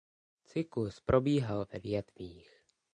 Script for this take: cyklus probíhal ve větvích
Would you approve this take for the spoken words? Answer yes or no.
yes